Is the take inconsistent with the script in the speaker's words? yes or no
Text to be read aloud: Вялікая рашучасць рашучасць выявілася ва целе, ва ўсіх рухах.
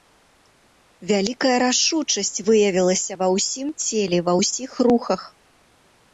yes